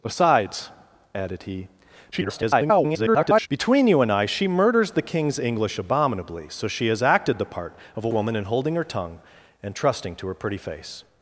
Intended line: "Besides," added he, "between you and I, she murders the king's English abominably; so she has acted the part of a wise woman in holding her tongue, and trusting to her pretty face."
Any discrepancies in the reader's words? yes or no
yes